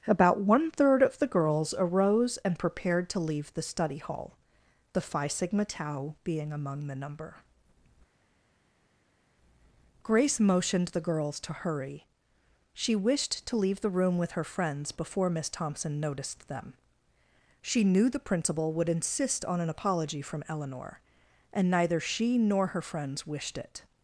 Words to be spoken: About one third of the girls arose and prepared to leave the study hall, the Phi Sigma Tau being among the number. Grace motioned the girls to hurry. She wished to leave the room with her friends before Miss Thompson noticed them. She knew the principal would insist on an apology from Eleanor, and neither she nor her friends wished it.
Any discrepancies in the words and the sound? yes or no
no